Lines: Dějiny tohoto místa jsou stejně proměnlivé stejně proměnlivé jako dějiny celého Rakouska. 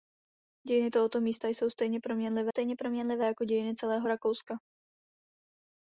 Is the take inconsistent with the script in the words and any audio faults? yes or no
no